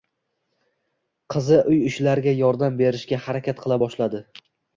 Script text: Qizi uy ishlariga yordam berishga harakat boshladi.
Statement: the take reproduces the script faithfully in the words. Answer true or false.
false